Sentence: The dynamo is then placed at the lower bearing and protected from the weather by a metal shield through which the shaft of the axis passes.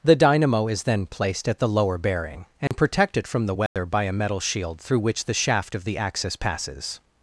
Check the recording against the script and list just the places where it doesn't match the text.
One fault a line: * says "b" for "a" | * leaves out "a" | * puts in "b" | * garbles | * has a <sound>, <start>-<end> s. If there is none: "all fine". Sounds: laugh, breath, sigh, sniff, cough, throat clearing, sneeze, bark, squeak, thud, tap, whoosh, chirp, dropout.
* has a dropout, 2.7-2.7 s
* has a dropout, 3.7-3.8 s